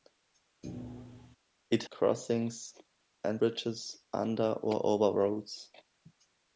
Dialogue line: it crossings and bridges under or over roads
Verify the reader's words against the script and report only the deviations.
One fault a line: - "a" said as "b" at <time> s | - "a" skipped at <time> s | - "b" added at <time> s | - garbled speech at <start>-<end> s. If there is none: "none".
none